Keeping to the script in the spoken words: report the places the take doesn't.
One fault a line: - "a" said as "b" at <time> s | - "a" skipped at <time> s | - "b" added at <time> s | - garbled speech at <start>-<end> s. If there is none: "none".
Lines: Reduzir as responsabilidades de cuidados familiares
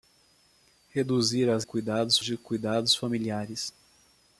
- "responsabilidades" said as "cuidados" at 1.6 s